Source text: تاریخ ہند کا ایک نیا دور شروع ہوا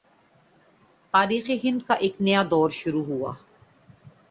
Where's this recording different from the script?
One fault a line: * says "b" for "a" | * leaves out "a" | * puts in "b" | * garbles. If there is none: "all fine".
all fine